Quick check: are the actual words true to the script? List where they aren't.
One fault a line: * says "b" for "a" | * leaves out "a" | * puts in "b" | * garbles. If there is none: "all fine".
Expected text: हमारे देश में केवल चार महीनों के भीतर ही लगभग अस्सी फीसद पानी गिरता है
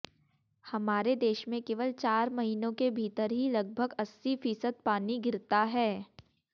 all fine